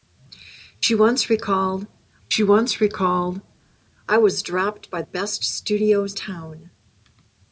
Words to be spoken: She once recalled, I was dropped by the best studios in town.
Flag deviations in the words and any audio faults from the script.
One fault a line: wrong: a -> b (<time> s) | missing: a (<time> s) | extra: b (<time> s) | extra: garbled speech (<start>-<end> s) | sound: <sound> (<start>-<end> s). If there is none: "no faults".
extra: she once recalled (2.3 s)
missing: the (5.0 s)
missing: in (6.1 s)